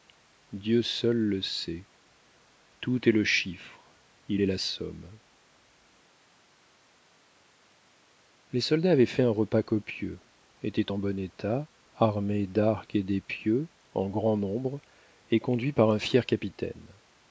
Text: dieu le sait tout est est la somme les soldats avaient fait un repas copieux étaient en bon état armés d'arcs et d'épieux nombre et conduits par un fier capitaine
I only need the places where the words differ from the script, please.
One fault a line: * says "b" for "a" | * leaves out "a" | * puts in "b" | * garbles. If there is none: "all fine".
* puts in "seul"
* puts in "le chiffre il"
* puts in "en grand"